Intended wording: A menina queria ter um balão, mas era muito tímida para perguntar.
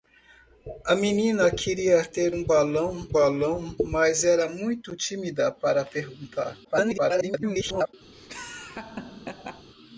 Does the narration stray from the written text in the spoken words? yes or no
yes